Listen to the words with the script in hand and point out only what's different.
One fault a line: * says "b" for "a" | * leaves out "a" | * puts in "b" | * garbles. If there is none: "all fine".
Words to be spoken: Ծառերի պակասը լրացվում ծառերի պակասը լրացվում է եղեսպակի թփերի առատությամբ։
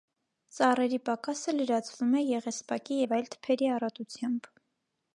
* says "է եղեսպակի և այլ" for "ծառերի պակասը լրացվում է եղեսպակի"